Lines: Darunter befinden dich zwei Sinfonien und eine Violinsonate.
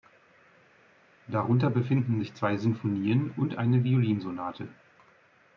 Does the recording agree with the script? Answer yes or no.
no